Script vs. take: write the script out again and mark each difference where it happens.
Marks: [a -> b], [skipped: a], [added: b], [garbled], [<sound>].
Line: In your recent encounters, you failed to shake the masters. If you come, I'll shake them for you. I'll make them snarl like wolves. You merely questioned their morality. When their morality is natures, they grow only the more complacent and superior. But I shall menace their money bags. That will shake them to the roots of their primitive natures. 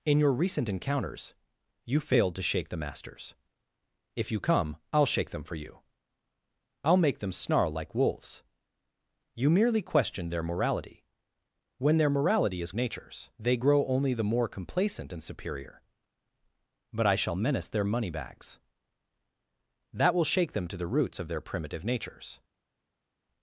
In your recent encounters, you failed to shake the masters. If you come, I'll shake them for you. I'll make them snarl like wolves. You merely questioned their morality. When their morality is natures, they grow only the more complacent and superior. But I shall menace their money bags. That will shake them to the roots of their primitive natures.